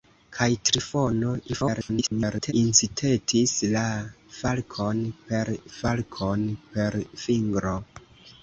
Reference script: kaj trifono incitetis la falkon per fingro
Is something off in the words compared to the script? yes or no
yes